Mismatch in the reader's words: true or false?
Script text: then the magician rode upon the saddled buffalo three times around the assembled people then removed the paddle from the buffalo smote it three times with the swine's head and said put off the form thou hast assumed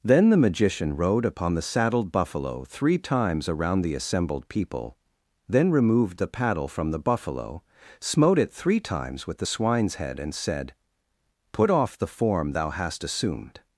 false